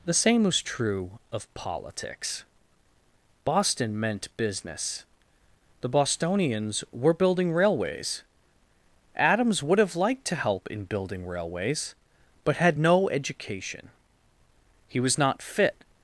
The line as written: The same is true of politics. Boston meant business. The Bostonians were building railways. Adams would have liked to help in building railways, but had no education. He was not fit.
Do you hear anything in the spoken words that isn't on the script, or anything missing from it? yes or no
yes